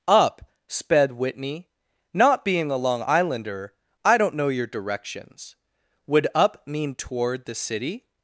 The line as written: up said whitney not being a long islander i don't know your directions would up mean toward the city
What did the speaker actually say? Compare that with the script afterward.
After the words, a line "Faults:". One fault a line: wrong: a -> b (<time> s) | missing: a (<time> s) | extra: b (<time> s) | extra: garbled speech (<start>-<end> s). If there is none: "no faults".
up sped whitney not being a long islander i don't know your directions would up mean toward the city
Faults:
wrong: said -> sped (0.7 s)